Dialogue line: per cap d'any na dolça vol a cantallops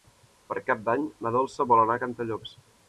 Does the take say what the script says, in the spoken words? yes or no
no